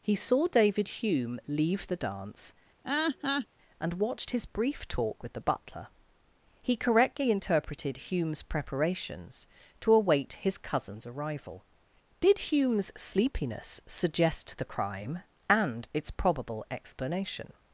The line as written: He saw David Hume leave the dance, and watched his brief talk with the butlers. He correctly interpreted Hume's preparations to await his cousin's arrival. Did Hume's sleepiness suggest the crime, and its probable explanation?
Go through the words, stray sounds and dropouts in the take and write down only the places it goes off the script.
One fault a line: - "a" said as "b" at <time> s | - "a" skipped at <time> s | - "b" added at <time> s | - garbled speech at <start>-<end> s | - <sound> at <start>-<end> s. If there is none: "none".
- laugh at 2.8-3.5 s
- "butlers" said as "butler" at 5.4 s